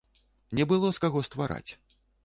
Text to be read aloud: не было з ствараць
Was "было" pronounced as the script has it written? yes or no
yes